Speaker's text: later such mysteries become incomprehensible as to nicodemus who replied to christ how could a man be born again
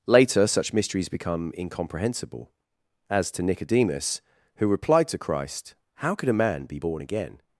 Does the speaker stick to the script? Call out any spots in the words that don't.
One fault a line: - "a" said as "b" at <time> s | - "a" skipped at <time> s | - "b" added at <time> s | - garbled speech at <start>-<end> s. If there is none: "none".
none